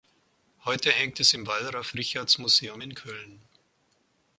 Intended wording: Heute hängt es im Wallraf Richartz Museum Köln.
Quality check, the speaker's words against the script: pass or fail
fail